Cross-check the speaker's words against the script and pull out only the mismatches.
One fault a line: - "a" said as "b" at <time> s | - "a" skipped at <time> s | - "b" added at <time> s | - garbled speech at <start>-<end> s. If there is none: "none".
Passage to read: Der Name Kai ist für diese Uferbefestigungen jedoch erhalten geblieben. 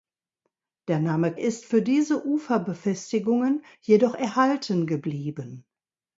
- "Kai" skipped at 1.3 s